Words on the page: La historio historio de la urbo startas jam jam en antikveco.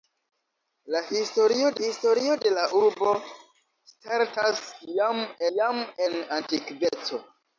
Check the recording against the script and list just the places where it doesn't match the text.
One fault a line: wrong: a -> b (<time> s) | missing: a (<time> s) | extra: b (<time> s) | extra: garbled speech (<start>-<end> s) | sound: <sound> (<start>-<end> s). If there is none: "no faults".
no faults